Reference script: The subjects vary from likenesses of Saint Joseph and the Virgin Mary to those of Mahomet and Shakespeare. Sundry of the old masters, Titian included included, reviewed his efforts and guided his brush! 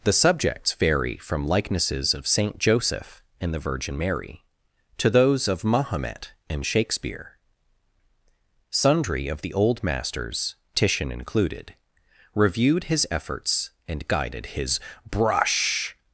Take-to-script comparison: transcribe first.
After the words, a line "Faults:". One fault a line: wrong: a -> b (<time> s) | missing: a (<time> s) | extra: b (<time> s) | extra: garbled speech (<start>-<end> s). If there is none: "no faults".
The subjects vary from likenesses of Saint Joseph and the Virgin Mary to those of Mahomet and Shakespeare. Sundry of the old masters, Titian included, reviewed his efforts and guided his brush!
Faults:
missing: included (11.7 s)